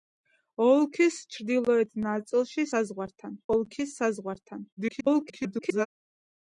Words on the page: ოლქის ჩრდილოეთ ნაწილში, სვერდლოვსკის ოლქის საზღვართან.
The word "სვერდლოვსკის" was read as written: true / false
false